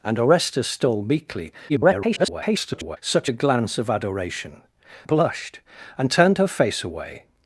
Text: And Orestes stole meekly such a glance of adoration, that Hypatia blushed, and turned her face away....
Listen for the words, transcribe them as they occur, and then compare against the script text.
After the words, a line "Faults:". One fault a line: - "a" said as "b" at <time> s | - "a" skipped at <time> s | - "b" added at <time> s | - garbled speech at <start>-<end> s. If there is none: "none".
And Orestes stole meekly [garbled] such a glance of adoration, blushed, and turned her face away....
Faults:
- garbled speech at 1.7-3.0 s
- "that Hypatia" skipped at 4.6 s